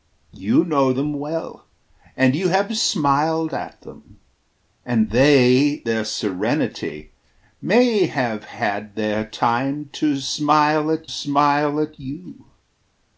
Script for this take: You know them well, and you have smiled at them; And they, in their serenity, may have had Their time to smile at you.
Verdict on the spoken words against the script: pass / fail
fail